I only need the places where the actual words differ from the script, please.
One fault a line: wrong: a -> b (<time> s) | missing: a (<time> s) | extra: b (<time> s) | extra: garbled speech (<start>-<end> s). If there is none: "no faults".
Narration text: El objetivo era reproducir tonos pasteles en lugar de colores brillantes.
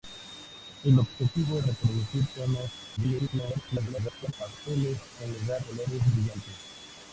missing: era (1.6 s)
extra: garbled speech (3.0-4.3 s)
missing: de (5.6 s)